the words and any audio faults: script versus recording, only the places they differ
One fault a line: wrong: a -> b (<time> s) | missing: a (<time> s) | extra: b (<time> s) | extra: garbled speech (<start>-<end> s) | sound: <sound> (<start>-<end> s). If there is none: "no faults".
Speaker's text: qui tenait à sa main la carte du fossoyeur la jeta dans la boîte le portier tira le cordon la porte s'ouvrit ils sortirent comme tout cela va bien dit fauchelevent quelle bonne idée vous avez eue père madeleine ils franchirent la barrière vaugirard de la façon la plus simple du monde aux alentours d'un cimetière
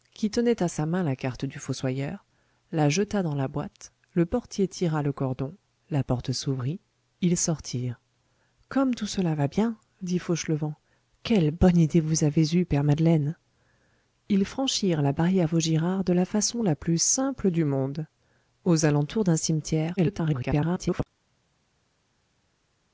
extra: garbled speech (20.0-21.1 s)